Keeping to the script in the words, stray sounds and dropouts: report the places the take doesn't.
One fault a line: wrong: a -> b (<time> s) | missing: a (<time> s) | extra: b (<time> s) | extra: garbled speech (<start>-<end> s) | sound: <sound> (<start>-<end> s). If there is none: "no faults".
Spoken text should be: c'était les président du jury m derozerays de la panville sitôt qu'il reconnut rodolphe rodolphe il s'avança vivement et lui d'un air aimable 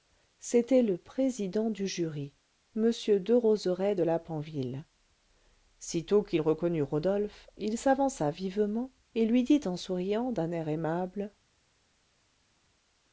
wrong: les -> le (0.8 s)
missing: rodolphe (7.5 s)
extra: dit en souriant (9.4 s)